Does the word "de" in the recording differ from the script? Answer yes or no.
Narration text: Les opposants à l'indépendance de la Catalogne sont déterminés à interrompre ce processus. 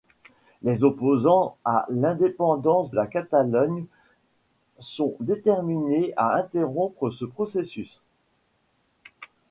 yes